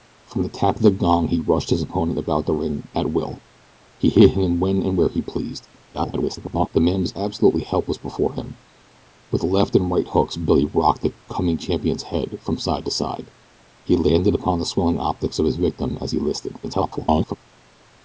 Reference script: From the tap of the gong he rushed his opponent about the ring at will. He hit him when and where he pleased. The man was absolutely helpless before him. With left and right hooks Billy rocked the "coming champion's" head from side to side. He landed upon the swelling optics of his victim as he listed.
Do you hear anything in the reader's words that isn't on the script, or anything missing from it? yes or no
yes